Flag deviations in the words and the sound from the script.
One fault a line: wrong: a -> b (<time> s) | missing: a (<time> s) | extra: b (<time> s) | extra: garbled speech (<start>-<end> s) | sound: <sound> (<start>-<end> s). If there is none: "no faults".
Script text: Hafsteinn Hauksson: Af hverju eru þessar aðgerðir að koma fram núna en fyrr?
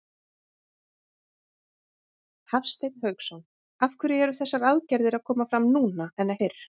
no faults